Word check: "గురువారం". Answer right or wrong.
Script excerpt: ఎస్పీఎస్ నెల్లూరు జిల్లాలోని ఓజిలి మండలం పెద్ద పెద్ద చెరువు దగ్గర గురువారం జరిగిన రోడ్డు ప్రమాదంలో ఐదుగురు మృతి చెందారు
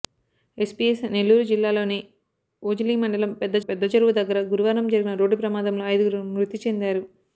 right